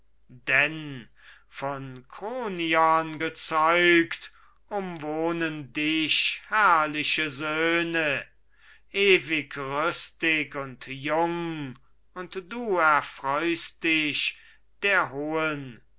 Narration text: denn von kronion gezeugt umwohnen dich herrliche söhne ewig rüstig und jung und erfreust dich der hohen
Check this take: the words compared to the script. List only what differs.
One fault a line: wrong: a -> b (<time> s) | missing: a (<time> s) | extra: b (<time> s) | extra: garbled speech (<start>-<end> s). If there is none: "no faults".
extra: du (12.5 s)